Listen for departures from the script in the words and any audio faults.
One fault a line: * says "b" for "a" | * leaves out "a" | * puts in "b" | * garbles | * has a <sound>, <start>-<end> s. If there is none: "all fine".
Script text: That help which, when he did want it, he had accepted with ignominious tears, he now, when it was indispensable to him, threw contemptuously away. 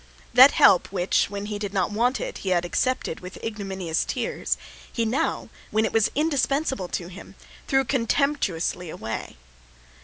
* puts in "not"